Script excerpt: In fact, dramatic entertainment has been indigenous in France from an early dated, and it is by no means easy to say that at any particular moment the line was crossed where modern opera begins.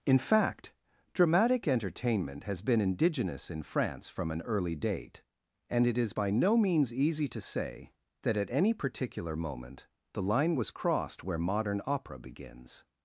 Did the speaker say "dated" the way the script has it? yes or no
no